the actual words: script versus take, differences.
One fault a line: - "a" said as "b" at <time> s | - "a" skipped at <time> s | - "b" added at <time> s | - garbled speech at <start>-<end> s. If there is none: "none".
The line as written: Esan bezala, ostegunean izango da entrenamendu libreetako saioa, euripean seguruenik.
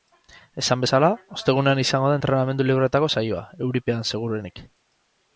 none